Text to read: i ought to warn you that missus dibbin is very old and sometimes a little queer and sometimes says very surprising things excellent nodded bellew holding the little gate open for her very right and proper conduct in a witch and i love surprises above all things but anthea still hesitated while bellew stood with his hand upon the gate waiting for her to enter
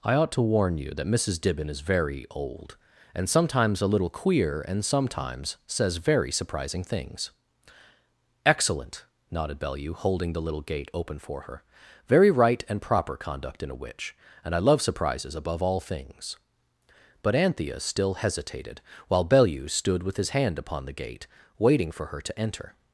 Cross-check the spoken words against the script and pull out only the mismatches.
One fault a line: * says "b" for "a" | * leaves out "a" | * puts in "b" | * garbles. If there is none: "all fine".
all fine